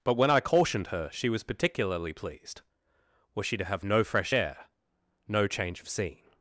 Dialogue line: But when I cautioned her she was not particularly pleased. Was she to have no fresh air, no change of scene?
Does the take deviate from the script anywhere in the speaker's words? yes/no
yes